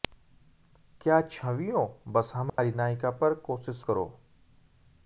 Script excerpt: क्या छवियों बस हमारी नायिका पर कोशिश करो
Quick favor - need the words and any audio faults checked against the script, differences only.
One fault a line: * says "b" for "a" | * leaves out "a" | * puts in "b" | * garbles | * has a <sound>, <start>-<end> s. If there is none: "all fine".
* has a dropout, 2.5-2.6 s